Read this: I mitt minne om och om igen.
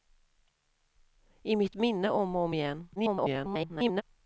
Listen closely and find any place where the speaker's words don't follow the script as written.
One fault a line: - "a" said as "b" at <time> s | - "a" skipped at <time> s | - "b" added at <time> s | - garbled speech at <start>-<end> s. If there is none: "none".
- garbled speech at 3.0-4.0 s